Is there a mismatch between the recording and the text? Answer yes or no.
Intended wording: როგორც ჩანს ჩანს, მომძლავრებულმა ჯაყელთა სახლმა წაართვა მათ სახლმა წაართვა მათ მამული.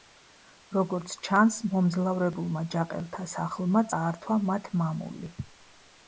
yes